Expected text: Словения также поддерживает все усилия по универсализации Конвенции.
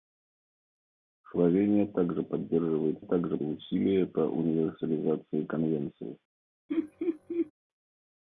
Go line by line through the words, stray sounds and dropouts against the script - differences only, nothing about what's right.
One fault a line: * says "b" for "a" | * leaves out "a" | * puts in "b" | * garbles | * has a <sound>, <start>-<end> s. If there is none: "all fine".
* says "также" for "все"
* has a laugh, 6.7-7.5 s